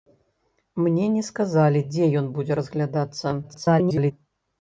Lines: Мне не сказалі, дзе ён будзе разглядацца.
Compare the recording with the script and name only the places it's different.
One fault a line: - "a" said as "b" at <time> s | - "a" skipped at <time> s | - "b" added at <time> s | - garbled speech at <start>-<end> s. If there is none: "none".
- garbled speech at 3.4-4.1 s